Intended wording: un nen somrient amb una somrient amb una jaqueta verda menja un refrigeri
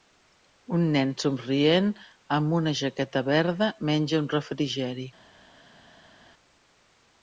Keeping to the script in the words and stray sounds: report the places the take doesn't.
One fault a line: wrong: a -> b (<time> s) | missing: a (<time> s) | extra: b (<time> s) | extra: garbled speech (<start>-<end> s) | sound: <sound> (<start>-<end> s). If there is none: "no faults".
missing: somrient amb una (2.7 s)